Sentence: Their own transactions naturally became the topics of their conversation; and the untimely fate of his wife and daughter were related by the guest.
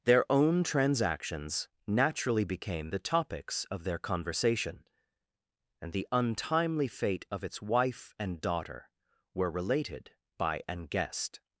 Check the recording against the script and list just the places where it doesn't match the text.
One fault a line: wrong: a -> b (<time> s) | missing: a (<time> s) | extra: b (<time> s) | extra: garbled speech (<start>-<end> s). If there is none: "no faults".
wrong: his -> its (7.4 s)
wrong: the -> an (10.7 s)